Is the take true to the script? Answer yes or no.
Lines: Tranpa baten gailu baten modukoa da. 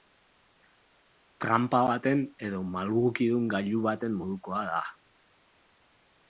no